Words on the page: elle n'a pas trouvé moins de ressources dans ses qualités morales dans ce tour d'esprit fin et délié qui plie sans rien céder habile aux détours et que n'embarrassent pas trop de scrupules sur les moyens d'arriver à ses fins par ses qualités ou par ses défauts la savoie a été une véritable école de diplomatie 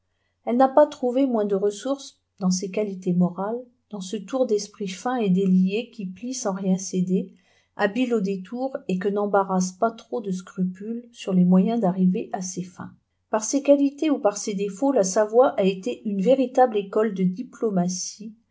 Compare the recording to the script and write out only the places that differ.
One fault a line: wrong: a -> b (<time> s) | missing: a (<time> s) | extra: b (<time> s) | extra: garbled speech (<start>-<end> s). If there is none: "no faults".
no faults